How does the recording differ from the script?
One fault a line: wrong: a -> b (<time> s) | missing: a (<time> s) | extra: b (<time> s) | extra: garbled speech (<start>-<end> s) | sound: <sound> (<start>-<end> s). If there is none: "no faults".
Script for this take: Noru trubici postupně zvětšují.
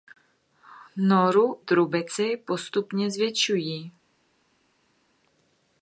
no faults